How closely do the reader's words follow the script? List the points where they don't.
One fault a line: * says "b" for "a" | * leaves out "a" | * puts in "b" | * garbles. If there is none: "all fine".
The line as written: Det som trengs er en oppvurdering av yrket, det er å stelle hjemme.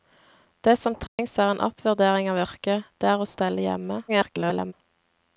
* garbles